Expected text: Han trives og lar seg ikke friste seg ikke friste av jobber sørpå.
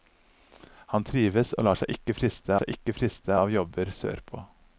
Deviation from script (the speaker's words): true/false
false